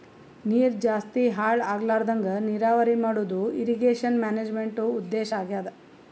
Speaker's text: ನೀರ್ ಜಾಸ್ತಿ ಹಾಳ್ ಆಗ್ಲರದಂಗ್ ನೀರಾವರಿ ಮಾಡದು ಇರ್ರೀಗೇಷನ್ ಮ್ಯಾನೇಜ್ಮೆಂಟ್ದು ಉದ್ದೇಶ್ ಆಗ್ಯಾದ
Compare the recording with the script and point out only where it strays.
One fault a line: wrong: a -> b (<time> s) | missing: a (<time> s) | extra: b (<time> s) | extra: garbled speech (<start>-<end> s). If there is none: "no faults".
no faults